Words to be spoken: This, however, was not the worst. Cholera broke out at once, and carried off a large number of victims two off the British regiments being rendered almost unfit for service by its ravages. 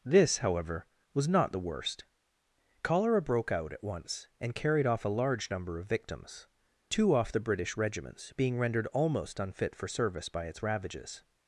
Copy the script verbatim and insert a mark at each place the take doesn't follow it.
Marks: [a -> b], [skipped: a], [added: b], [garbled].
This, however, was not the worst. Cholera broke out at once, and carried off a large number of victims two off the British regiments being rendered almost unfit for service by its ravages.